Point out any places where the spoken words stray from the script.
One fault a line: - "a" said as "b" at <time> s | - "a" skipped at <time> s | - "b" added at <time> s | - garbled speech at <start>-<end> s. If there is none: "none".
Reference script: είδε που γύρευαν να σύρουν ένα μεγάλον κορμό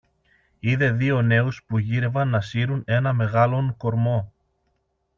- "δύο νέους" added at 0.9 s